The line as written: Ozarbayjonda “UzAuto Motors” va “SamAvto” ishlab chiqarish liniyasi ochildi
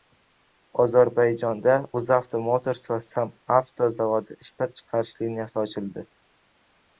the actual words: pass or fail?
fail